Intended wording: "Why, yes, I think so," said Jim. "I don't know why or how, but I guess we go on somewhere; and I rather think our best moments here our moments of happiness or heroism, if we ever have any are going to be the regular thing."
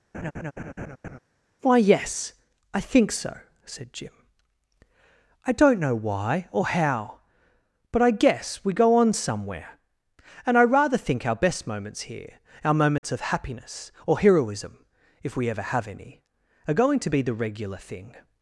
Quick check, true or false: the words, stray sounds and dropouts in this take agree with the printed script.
false